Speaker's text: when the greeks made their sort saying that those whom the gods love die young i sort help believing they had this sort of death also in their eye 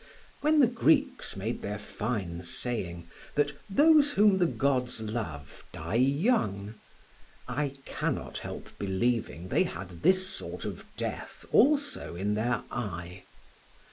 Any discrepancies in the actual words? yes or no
yes